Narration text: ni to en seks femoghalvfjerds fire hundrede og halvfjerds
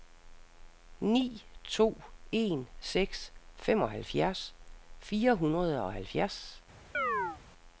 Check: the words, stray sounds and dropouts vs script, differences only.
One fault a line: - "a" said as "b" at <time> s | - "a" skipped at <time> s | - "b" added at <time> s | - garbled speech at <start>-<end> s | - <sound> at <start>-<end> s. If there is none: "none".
- chirp at 6.9-7.4 s